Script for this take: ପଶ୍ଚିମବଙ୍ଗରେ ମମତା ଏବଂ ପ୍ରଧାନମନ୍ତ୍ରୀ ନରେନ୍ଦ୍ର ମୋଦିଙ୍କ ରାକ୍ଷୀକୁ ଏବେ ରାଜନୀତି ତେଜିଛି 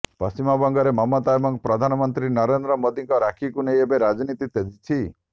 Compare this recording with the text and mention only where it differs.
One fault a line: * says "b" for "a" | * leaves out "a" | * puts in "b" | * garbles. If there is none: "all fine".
* puts in "ନେଇ"